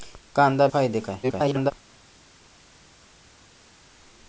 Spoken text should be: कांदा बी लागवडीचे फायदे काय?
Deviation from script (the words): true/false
true